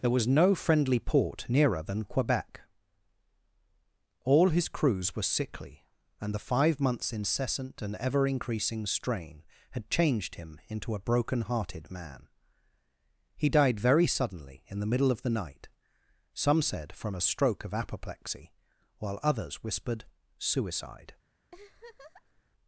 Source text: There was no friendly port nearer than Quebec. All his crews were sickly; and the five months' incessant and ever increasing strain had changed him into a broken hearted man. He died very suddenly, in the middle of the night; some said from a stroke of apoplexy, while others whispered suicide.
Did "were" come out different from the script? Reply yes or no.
no